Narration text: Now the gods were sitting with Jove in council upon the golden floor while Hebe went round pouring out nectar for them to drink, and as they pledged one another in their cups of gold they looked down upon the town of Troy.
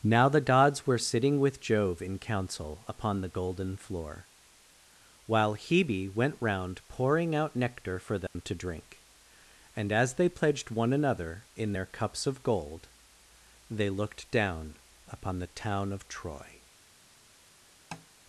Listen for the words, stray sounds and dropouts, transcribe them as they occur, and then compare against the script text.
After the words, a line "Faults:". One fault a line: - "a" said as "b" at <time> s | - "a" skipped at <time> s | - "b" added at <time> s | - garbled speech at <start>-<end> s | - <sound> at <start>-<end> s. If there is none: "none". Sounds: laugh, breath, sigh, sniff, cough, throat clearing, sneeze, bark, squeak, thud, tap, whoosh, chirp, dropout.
Now the gods were sitting with Jove in council upon the golden floor while Hebe went round pouring out nectar for them to drink, and as they pledged one another in their cups of gold they looked down upon the town of Troy.
Faults:
- dropout at 8.3-8.4 s
- tap at 17.9-18.1 s